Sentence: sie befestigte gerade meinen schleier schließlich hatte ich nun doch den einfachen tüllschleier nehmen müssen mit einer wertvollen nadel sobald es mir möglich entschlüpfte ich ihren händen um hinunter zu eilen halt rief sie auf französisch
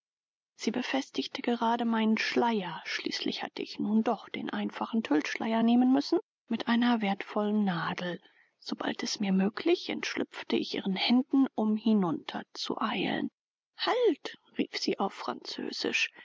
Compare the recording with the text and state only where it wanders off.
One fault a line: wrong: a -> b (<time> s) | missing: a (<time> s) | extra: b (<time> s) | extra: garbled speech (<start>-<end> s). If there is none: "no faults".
no faults